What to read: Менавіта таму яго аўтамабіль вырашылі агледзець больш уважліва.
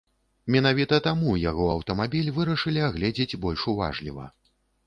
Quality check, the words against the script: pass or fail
pass